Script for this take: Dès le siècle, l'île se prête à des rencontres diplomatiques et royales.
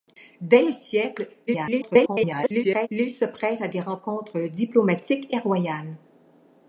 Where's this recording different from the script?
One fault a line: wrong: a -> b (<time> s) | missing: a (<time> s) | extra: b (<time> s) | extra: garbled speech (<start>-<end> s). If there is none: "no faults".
extra: garbled speech (1.5-2.9 s)